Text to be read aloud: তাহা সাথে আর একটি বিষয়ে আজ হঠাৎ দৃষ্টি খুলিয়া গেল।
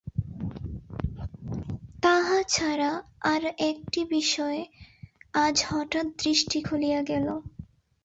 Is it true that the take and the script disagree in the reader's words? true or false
true